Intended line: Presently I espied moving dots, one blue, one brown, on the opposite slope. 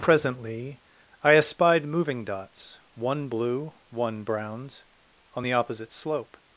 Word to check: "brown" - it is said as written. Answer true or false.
false